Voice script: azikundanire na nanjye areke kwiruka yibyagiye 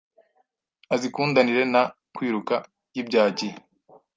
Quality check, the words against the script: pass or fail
fail